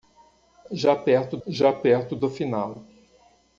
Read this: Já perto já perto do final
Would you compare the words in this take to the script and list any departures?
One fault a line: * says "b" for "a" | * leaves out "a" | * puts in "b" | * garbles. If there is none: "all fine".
all fine